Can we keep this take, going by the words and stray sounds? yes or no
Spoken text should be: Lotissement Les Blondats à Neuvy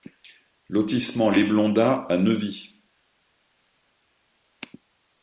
yes